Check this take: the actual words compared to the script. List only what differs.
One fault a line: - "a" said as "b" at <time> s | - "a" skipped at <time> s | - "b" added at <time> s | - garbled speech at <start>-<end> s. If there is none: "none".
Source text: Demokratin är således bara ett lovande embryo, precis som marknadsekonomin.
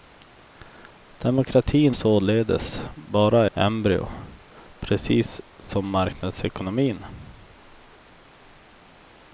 - "är" skipped at 1.9 s
- "ett lovande" skipped at 3.5 s